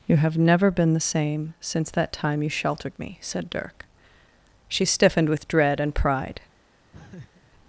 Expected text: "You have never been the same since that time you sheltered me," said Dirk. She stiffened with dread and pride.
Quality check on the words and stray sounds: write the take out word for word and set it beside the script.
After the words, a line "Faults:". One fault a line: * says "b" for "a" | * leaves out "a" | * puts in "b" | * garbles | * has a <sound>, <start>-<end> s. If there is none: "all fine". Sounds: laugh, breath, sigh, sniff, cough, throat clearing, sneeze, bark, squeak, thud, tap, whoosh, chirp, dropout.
"You have never been the same since that time you sheltered me," said Dirk. She stiffened with dread and pride.
Faults:
* has a laugh, 6.9-7.5 s